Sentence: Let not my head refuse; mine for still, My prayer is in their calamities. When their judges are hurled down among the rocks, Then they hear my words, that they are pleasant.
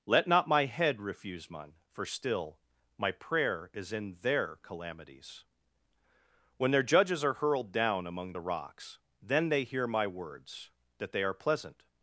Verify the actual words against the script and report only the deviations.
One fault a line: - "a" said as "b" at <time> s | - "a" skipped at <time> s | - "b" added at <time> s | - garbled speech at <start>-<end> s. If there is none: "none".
none